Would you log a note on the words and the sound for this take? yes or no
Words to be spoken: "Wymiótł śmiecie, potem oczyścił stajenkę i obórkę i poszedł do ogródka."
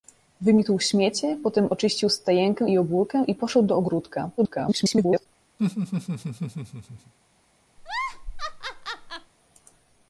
yes